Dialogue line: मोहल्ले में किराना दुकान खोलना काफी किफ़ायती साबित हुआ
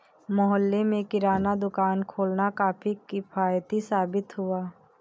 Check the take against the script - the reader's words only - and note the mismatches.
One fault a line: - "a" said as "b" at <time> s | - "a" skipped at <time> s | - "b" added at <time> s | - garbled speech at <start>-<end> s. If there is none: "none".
none